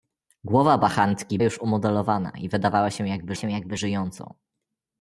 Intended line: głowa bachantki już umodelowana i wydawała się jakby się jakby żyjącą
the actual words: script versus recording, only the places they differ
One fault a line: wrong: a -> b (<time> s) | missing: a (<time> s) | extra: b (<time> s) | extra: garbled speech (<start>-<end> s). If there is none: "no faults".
no faults